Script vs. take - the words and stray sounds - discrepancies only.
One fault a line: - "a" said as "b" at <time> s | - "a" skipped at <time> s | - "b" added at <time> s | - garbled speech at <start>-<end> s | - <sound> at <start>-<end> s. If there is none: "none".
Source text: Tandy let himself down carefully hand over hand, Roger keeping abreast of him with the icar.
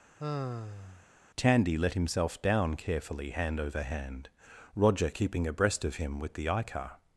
- sigh at 0.2-1.1 s